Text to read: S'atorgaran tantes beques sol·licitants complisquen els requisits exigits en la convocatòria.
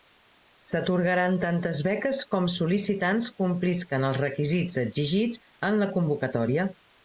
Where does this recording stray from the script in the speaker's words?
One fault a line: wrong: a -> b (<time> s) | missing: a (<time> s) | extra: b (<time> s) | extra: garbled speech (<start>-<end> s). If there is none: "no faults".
extra: com (2.3 s)